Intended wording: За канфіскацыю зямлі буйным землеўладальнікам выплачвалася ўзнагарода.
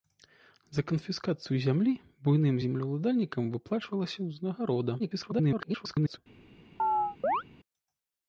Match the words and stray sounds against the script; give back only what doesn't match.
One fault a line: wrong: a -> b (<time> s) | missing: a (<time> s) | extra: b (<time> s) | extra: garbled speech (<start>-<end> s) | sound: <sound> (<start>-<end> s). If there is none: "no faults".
extra: garbled speech (5.0-6.2 s)
sound: chirp (6.8-7.4 s)